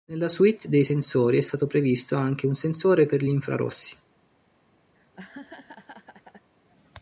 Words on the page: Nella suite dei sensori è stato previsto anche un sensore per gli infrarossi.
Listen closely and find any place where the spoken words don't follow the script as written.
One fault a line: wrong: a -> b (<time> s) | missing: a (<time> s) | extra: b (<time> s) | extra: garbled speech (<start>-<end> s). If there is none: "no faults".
no faults